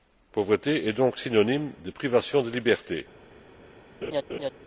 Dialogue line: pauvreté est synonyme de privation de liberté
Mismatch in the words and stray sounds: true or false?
true